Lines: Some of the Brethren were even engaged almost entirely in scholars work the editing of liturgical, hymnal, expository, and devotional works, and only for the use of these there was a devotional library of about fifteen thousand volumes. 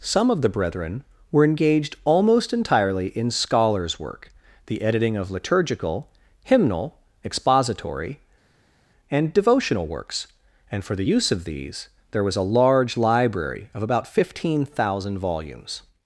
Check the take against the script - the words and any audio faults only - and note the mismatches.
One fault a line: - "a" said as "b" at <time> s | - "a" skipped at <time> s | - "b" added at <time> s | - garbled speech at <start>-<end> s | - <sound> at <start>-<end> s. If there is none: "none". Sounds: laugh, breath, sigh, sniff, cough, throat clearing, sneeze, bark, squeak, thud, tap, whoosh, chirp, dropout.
- "even" skipped at 1.4 s
- "only" skipped at 10.8 s
- "devotional" said as "large" at 12.5 s